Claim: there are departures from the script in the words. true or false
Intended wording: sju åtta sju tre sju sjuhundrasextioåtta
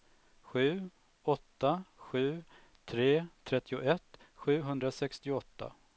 true